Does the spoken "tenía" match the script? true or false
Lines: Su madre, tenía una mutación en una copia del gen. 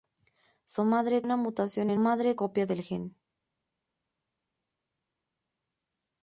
false